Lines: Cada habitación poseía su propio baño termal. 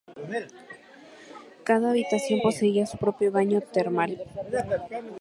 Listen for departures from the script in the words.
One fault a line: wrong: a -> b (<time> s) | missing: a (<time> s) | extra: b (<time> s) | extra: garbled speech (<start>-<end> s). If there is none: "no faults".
no faults